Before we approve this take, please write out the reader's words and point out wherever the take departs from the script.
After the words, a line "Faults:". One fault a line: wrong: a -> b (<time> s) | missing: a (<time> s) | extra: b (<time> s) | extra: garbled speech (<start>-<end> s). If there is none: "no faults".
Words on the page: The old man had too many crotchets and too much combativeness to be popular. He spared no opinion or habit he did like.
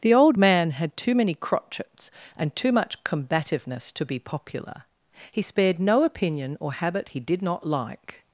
The old man had too many crotchets and too much combativeness to be popular. He spared no opinion or habit he did not like.
Faults:
extra: not (7.4 s)